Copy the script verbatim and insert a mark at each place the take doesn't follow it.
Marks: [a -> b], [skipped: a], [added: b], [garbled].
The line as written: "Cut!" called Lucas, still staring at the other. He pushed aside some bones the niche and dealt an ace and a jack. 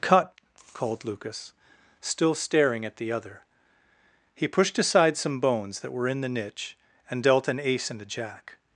"Cut!" called Lucas, still staring at the other. He pushed aside some bones [added: that were in] the niche and dealt an ace and a jack.